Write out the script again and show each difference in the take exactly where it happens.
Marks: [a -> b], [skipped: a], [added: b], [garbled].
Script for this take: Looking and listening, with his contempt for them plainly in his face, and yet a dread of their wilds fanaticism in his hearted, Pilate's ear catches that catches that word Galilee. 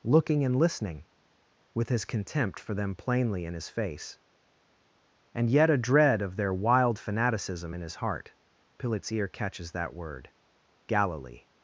Looking and listening, with his contempt for them plainly in his face, and yet a dread of their [wilds -> wild] fanaticism in his [hearted, -> heart] Pilate's ear catches that [skipped: catches that] word Galilee.